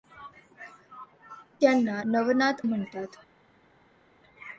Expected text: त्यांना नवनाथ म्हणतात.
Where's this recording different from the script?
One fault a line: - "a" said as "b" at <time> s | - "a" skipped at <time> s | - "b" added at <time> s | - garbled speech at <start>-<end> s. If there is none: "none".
none